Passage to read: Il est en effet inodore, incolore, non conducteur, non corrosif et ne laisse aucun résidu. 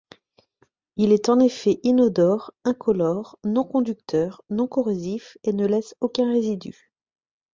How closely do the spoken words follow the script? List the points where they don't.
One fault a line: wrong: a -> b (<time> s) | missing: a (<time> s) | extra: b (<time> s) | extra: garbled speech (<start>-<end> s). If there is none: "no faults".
no faults